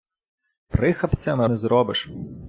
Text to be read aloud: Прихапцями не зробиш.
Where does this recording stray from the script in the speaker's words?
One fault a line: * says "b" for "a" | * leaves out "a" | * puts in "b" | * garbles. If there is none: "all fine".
all fine